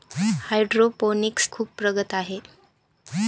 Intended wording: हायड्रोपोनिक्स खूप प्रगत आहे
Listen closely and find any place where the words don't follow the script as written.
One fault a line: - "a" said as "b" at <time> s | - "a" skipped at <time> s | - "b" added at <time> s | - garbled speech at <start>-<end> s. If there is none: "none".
none